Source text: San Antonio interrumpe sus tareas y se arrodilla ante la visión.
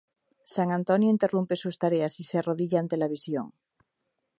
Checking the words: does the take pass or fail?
pass